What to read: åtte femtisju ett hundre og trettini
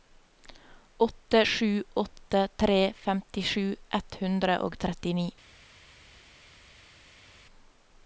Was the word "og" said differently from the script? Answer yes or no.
no